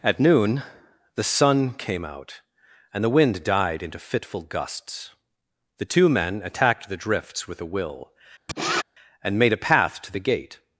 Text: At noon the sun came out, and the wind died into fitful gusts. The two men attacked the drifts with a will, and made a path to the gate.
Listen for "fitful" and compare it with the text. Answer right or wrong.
right